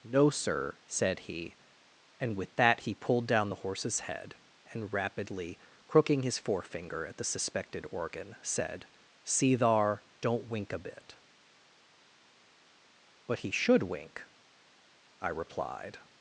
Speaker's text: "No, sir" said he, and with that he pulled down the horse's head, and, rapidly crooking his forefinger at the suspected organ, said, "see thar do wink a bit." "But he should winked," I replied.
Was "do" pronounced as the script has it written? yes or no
no